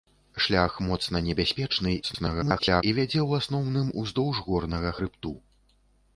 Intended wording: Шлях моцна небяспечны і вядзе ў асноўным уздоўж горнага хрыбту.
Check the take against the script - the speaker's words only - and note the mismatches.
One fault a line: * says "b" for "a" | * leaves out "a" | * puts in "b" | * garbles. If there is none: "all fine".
* garbles